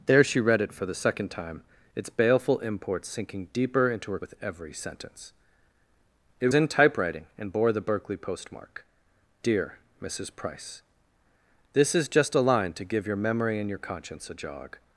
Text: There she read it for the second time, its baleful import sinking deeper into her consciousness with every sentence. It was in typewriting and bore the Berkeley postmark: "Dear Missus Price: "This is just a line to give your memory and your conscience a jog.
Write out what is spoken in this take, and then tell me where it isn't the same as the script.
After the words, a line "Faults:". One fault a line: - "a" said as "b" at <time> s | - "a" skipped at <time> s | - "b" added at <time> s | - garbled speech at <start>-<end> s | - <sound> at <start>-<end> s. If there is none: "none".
There she read it for the second time, its baleful import sinking deeper into her with every sentence. It in typewriting and bore the Berkeley postmark: "Dear Missus Price: "This is just a line to give your memory and your conscience a jog.
Faults:
- "consciousness" skipped at 4.2 s
- "was" skipped at 6.5 s